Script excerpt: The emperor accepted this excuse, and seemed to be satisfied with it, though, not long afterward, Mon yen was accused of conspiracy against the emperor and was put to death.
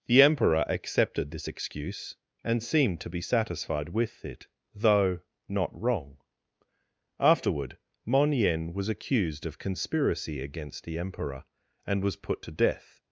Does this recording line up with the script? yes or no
no